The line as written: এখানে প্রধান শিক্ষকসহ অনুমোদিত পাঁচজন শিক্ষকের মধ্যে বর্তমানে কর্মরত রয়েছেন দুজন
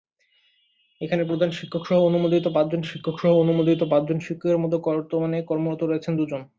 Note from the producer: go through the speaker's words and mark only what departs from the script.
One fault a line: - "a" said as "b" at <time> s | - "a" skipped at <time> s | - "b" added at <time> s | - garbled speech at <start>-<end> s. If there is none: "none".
- "শিক্ষকসহ অনুমোদিত পাঁচজন" added at 2.8 s